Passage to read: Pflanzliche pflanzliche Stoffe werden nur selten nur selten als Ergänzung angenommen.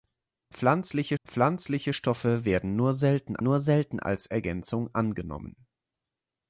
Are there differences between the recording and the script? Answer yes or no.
no